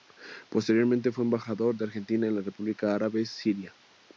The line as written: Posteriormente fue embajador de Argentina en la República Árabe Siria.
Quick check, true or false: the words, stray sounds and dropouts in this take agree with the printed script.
true